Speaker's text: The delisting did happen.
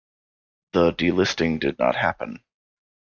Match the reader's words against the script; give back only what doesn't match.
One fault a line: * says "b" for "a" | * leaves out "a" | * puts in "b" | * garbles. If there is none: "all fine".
* puts in "not"